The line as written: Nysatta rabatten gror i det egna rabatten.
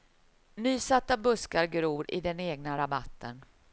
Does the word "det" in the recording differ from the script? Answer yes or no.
yes